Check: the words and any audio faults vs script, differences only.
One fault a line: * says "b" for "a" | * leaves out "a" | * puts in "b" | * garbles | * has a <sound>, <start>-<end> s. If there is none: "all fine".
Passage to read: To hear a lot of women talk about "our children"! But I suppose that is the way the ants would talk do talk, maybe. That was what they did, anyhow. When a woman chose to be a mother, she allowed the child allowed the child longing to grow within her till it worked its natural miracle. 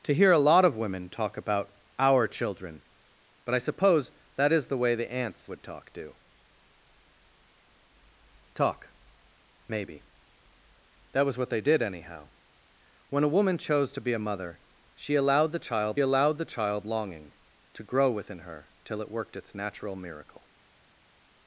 all fine